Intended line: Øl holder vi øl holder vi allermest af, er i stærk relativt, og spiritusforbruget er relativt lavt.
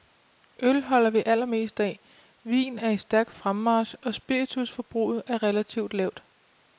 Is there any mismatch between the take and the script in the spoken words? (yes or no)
yes